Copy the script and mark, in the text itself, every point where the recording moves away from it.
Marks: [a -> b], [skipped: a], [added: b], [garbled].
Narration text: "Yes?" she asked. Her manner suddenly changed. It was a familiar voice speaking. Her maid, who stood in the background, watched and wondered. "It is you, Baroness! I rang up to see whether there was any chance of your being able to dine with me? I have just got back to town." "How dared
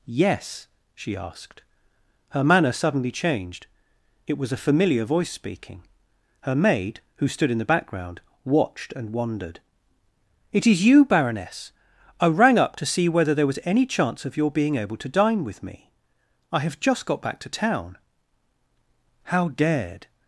"Yes?" she asked. Her manner suddenly changed. It was a familiar voice speaking. Her maid, who stood in the background, watched and wondered. "It is you, Baroness! I rang up to see whether there was any chance of your being able to dine with me? I have just got back to town." "How dared